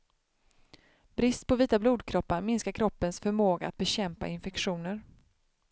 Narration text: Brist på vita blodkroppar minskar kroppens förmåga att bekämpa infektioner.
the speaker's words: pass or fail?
pass